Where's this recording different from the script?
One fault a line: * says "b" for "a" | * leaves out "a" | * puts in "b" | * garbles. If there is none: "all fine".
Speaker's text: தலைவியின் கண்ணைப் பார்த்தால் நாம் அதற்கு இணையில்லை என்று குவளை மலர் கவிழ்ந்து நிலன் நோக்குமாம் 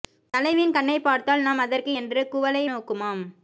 * leaves out "இணையில்லை"
* leaves out "மலர் கவிழ்ந்து நிலன்"